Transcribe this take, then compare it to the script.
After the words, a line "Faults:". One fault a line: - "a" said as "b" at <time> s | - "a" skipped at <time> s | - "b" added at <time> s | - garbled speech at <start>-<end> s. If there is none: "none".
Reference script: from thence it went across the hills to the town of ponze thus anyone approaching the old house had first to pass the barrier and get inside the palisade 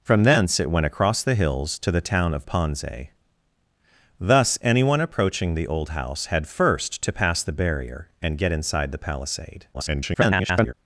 from thence it went across the hills to the town of ponze thus anyone approaching the old house had first to pass the barrier and get inside the palisade [garbled]
Faults:
- garbled speech at 9.7-10.7 s